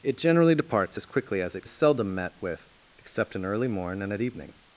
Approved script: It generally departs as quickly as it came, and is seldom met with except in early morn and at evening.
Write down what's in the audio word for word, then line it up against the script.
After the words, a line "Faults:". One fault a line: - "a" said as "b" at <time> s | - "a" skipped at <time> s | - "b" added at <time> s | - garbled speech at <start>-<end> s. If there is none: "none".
It generally departs as quickly as it is seldom met with except in early morn and at evening.
Faults:
- "came and" skipped at 1.7 s